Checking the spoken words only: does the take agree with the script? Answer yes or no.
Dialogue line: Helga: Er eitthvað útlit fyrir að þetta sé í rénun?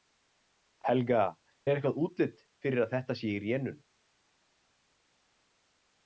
yes